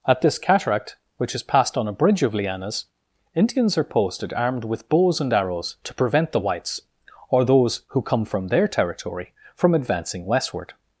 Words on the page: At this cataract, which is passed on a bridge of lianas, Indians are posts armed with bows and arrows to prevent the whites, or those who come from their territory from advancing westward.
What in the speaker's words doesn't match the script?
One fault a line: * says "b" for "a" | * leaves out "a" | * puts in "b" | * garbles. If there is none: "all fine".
* says "posted" for "posts"